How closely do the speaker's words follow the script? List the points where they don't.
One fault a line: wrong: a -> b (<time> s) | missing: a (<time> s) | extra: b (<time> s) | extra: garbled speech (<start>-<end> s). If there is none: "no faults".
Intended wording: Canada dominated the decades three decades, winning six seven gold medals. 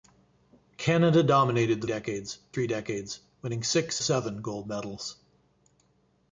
no faults